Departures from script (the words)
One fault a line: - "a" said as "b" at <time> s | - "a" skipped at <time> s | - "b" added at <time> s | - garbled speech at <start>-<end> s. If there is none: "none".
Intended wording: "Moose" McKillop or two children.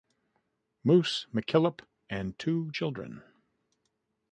- "or" said as "and" at 2.1 s